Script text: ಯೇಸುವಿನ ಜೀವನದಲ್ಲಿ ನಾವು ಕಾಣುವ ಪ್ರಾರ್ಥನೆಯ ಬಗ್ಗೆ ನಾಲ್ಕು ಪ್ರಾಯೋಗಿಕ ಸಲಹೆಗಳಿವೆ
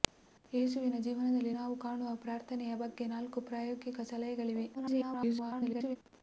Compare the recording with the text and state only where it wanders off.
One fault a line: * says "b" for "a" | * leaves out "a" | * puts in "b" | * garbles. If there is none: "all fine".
* garbles